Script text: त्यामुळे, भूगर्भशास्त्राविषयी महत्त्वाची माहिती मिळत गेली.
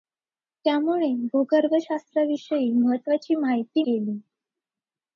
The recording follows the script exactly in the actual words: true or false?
false